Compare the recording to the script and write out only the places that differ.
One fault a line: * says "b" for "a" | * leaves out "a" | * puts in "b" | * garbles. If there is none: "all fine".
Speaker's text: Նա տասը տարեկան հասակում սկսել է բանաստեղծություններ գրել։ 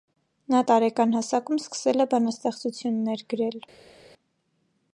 * leaves out "տասը"